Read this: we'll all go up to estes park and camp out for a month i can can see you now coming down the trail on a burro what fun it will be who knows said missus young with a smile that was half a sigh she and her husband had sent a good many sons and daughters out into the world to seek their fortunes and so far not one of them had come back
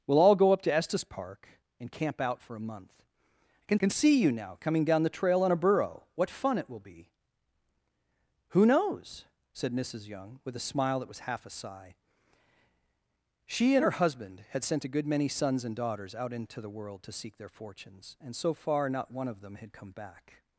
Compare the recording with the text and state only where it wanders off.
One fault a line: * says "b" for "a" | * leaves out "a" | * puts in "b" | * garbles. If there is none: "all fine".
all fine